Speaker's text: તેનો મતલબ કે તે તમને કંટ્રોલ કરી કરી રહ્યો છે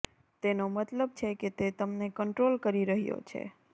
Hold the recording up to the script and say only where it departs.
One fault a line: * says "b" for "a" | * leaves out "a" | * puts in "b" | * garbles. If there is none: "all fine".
* puts in "છે"
* leaves out "કરી"